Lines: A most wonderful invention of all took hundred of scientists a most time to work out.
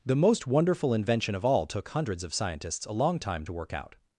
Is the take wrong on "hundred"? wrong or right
wrong